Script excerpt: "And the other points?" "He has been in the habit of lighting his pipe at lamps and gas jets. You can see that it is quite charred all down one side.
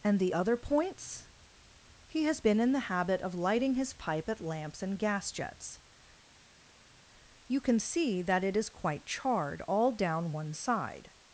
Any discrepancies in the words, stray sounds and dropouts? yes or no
no